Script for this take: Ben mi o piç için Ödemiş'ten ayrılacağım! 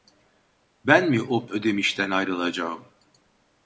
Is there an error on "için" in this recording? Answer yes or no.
yes